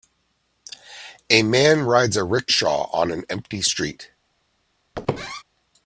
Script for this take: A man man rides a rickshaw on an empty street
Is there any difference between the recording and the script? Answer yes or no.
yes